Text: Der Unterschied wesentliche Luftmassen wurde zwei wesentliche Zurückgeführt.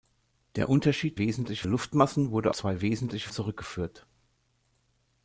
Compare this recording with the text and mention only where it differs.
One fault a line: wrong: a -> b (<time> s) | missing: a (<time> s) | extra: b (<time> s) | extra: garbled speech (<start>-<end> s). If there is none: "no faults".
no faults